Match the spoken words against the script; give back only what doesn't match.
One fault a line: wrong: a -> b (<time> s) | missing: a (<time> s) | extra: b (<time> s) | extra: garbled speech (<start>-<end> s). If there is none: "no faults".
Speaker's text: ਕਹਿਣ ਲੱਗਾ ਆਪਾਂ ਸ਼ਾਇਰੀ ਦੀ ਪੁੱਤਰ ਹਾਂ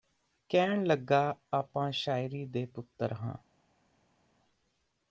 wrong: ਦੀ -> ਦੇ (2.4 s)